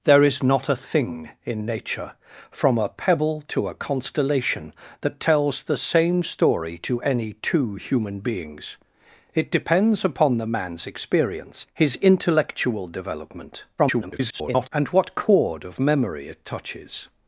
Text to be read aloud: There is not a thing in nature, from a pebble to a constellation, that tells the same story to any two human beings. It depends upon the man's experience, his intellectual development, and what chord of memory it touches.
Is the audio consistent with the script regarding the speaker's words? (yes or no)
no